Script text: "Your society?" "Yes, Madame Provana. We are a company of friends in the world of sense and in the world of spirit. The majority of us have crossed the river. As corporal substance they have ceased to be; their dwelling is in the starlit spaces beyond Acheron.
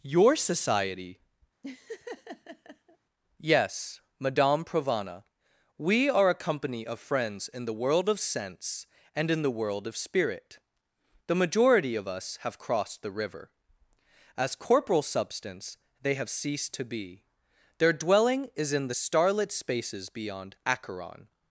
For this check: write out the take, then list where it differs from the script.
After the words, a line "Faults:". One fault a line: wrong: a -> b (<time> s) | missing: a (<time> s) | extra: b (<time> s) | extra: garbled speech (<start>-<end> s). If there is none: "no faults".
"Your society?" "Yes, Madame Provana. We are a company of friends in the world of sense and in the world of spirit. The majority of us have crossed the river. As corporal substance they have ceased to be; their dwelling is in the starlit spaces beyond Acheron.
Faults:
no faults